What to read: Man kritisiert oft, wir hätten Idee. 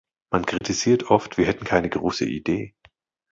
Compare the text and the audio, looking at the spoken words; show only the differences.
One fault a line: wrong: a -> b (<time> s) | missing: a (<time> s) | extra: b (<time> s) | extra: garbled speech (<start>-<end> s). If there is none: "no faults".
extra: keine große (1.6 s)